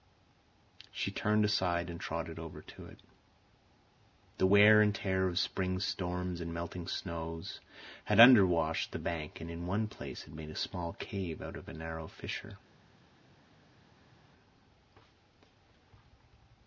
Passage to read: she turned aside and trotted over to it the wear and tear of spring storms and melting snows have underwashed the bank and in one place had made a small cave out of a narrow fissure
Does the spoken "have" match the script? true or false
false